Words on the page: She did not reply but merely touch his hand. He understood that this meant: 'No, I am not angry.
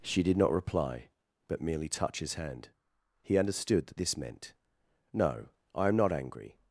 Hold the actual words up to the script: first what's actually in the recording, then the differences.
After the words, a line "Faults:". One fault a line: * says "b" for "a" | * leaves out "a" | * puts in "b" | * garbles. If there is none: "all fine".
She did not reply but merely touch his hand. He understood that this meant: 'No, I am not angry.
Faults:
all fine